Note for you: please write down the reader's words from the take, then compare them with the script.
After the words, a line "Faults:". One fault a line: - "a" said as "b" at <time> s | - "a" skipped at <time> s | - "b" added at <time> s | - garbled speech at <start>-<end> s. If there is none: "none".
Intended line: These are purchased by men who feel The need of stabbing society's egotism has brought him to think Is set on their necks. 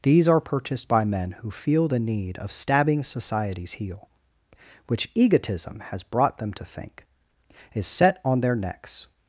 These are purchased by men who feel The need of stabbing society's heel, Which egotism has brought them to think Is set on their necks.
Faults:
- "heel Which" added at 3.7 s
- "him" said as "them" at 6.4 s